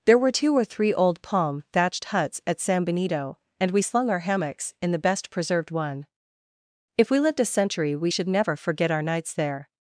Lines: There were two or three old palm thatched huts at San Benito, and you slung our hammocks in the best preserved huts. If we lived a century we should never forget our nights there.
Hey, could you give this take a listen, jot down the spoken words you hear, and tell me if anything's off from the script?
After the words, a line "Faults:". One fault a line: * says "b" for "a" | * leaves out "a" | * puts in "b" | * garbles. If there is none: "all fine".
There were two or three old palm thatched huts at San Benito, and we slung our hammocks in the best preserved one. If we lived a century we should never forget our nights there.
Faults:
* says "we" for "you"
* says "one" for "huts"